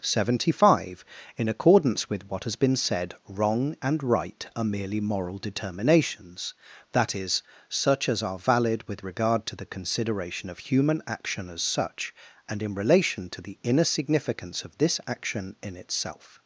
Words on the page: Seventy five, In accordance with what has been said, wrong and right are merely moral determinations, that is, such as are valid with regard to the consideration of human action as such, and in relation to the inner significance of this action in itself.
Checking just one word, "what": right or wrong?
right